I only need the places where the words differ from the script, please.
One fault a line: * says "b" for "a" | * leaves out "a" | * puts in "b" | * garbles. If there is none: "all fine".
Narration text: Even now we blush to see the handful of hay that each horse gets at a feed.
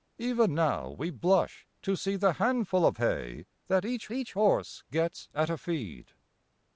* puts in "each"